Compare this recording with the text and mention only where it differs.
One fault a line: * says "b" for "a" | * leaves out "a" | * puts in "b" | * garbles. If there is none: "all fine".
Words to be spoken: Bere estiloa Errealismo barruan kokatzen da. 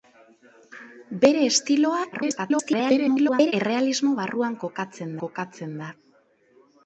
* garbles
* puts in "kokatzen"